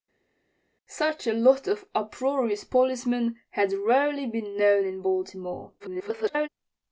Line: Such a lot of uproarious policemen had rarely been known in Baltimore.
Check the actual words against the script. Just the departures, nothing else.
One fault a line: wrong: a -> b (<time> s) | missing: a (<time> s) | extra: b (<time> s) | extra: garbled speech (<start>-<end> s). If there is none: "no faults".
extra: garbled speech (5.8-6.5 s)